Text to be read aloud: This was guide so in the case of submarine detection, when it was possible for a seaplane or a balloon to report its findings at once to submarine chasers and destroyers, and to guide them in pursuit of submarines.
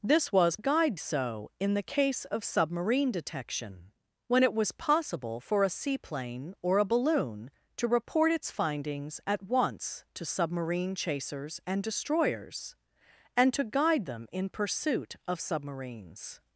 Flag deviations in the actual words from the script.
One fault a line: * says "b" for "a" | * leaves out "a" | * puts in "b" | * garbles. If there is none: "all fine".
all fine